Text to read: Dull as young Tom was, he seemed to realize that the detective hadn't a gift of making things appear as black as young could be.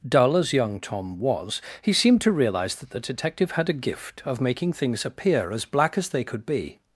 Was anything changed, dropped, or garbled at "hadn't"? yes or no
yes